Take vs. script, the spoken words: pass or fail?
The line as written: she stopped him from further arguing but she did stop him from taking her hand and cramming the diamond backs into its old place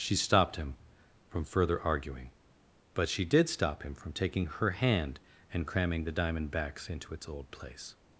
pass